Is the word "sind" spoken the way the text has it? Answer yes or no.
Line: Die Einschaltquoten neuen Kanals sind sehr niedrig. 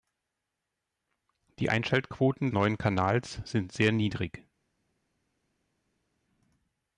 yes